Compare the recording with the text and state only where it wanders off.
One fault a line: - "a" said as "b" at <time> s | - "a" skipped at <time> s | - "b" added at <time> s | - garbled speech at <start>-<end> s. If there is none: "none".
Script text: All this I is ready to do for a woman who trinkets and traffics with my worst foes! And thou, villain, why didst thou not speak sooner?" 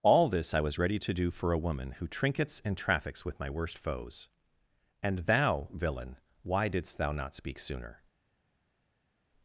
- "is" said as "was" at 0.6 s